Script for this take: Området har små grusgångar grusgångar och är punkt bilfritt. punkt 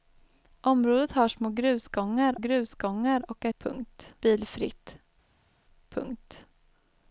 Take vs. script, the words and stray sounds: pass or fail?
pass